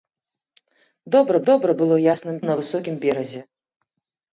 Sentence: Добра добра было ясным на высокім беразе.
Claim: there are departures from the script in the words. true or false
false